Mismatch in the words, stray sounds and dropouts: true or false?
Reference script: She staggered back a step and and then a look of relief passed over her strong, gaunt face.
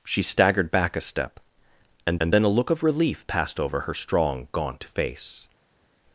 false